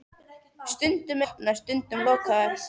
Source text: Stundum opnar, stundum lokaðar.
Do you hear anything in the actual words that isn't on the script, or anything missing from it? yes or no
no